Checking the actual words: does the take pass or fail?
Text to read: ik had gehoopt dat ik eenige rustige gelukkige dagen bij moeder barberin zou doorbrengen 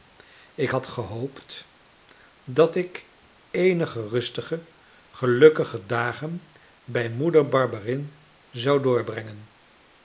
pass